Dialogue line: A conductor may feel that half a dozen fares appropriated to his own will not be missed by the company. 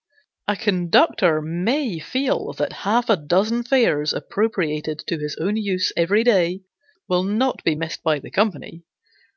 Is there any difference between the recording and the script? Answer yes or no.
yes